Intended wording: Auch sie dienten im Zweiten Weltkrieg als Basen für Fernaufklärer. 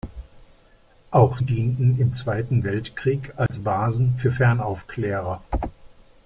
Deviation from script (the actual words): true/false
true